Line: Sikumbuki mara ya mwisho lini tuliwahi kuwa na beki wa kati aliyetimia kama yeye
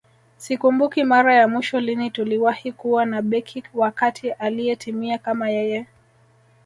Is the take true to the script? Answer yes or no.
yes